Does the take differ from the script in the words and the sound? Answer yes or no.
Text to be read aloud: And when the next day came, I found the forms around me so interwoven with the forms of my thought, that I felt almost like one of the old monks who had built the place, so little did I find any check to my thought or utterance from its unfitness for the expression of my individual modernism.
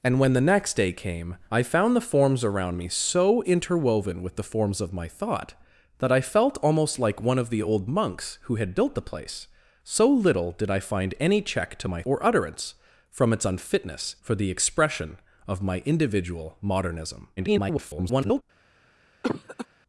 yes